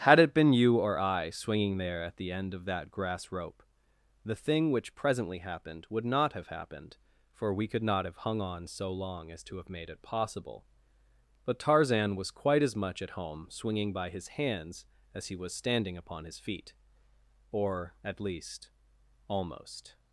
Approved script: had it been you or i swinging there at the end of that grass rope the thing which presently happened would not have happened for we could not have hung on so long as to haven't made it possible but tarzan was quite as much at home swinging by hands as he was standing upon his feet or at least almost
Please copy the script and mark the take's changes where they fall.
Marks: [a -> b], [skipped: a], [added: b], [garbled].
had it been you or i swinging there at the end of that grass rope the thing which presently happened would not have happened for we could not have hung on so long as to [haven't -> have] made it possible but tarzan was quite as much at home swinging by [added: his] hands as he was standing upon his feet or at least almost